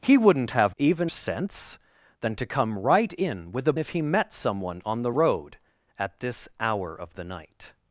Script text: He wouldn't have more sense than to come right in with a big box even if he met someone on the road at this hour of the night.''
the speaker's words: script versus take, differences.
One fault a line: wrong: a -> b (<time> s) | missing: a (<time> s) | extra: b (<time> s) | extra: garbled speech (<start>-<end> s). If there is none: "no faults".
wrong: more -> even (0.8 s)
missing: big box even (3.7 s)